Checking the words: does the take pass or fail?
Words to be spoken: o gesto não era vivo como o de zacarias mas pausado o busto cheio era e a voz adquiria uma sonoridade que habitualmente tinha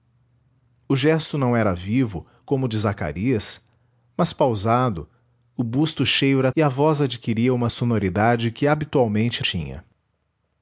pass